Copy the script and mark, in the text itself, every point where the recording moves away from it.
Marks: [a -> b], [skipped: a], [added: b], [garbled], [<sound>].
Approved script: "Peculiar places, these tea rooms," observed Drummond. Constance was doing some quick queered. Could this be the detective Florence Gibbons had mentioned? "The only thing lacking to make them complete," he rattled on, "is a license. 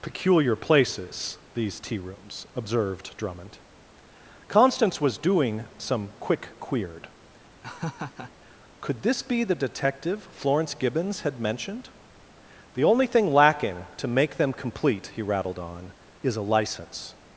"Peculiar places, these tea rooms," observed Drummond. Constance was doing some quick queered. [laugh] Could this be the detective Florence Gibbons had mentioned? "The only thing lacking to make them complete," he rattled on, "is a license.